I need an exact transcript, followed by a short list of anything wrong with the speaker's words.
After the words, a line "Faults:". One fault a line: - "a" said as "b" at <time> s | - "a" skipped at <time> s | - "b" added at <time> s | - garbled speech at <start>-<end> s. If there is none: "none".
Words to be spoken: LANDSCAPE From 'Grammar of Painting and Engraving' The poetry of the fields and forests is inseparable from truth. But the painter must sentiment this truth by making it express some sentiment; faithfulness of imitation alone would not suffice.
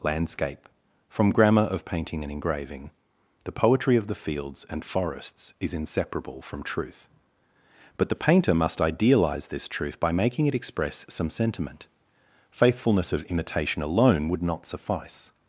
LANDSCAPE From 'Grammar of Painting and Engraving' The poetry of the fields and forests is inseparable from truth. But the painter must idealize this truth by making it express some sentiment; faithfulness of imitation alone would not suffice.
Faults:
- "sentiment" said as "idealize" at 8.8 s